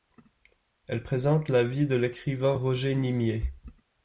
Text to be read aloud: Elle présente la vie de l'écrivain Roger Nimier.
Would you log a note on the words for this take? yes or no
no